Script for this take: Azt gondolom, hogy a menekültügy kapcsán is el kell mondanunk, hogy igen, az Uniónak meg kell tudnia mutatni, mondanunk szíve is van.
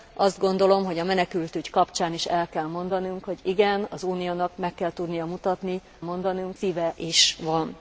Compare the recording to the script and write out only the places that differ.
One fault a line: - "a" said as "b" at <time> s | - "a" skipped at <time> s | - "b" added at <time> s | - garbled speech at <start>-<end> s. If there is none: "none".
none